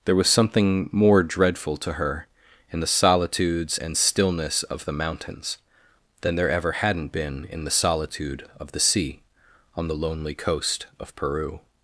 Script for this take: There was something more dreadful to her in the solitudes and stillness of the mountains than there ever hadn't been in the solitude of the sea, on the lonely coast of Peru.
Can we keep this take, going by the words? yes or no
yes